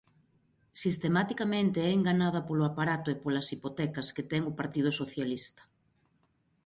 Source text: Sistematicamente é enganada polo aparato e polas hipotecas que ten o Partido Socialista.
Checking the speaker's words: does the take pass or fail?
pass